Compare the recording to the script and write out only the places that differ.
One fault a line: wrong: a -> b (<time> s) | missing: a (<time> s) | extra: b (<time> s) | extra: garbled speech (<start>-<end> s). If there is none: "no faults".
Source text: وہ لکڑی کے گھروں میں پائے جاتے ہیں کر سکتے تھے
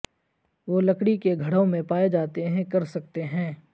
wrong: تھے -> ہیں (3.2 s)